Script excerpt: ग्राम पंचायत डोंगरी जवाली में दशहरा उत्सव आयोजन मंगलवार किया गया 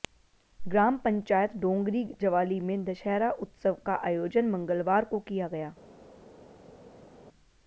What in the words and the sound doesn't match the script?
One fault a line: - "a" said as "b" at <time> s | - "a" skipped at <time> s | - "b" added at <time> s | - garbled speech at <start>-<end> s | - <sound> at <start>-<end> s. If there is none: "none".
- "का" added at 3.9 s
- "को" added at 5.1 s